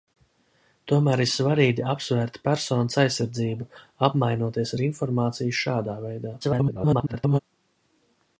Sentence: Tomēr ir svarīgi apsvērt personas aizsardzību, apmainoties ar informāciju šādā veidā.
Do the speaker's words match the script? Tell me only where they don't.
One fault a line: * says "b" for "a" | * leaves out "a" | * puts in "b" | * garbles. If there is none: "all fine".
* garbles